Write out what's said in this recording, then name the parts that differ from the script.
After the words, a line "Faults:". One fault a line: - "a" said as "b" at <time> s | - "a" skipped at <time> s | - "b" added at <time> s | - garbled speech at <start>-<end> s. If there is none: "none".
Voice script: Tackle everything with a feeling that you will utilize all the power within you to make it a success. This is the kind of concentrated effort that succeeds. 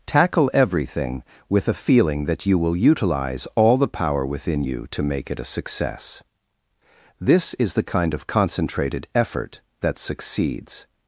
Tackle everything with a feeling that you will utilize all the power within you to make it a success. This is the kind of concentrated effort that succeeds.
Faults:
none